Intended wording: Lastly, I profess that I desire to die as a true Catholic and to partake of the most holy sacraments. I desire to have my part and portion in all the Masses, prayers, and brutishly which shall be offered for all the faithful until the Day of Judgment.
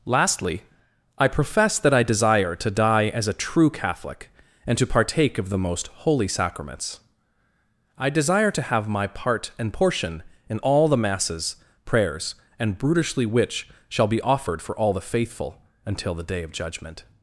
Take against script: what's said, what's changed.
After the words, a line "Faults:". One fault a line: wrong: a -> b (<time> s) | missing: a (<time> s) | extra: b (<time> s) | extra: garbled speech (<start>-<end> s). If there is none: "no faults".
Lastly, I profess that I desire to die as a true Catholic and to partake of the most holy sacraments. I desire to have my part and portion in all the Masses, prayers, and brutishly which shall be offered for all the faithful until the Day of Judgment.
Faults:
no faults